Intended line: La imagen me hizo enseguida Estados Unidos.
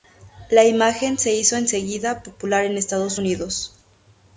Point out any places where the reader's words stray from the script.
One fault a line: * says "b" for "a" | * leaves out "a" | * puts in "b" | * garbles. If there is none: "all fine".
* says "se" for "me"
* puts in "popular en"